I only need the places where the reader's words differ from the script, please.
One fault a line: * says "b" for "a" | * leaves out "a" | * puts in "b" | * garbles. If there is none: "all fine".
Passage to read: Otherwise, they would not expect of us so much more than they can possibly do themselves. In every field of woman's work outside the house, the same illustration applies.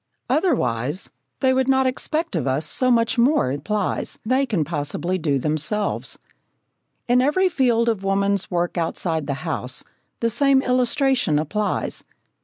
* says "applies" for "than"